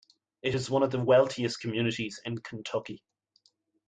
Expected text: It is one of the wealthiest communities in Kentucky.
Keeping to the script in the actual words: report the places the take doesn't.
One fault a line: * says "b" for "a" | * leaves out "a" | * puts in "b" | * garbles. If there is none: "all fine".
all fine